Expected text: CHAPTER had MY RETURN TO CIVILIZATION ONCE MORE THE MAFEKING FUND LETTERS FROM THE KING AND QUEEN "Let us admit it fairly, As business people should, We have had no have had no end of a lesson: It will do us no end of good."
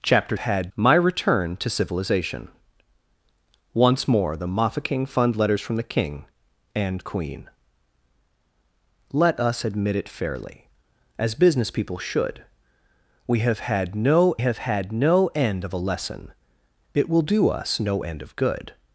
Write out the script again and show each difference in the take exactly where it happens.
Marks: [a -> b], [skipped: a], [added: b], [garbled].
CHAPTER had MY RETURN TO CIVILIZATION ONCE MORE THE MAFEKING FUND LETTERS FROM THE KING AND QUEEN "Let us admit it fairly, As business people should, We have had no have had no end of a lesson: It will do us no end of good."